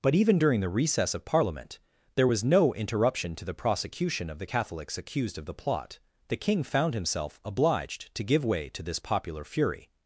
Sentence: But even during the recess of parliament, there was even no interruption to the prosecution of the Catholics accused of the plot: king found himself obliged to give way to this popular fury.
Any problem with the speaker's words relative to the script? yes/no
yes